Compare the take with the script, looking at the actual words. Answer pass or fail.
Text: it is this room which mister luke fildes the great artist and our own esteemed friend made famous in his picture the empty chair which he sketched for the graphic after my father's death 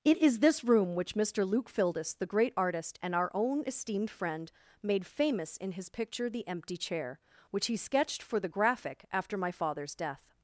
pass